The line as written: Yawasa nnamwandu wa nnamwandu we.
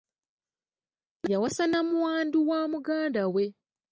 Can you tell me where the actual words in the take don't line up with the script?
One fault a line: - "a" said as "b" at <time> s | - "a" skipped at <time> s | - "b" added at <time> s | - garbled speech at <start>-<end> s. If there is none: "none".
- "nnamwandu" said as "muganda" at 2.7 s